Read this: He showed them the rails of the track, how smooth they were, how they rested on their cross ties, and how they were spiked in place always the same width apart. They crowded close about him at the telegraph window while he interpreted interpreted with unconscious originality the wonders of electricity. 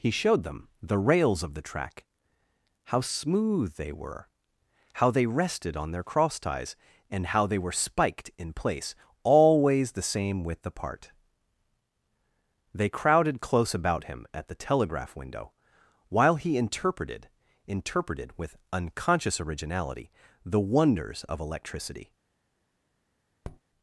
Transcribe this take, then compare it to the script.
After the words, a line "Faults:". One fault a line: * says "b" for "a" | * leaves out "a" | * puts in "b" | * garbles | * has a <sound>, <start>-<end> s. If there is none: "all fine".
He showed them the rails of the track, how smooth they were, how they rested on their cross ties, and how they were spiked in place always the same width apart. They crowded close about him at the telegraph window while he interpreted interpreted with unconscious originality the wonders of electricity.
Faults:
* has a tap, 23.4-23.6 s